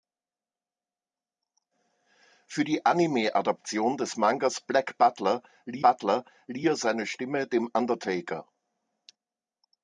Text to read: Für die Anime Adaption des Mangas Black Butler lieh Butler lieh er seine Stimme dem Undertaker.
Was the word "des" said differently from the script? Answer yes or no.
no